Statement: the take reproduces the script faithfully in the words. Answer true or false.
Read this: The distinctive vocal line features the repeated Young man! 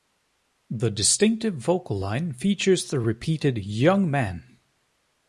true